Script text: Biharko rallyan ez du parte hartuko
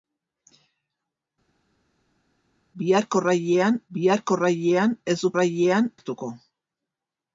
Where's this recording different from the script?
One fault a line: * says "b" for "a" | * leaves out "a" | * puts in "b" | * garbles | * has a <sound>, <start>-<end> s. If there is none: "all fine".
* puts in "biharko rallyan"
* says "rallyan" for "parte"